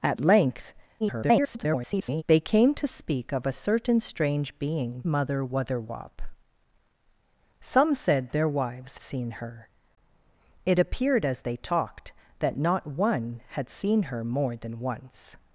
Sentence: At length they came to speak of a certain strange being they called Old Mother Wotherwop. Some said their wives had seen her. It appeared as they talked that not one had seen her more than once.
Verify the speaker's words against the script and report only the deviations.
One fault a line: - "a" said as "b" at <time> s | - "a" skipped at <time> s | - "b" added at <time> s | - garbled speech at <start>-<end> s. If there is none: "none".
- garbled speech at 1.0-2.2 s
- "they called Old" skipped at 5.0 s
- "had" skipped at 9.0 s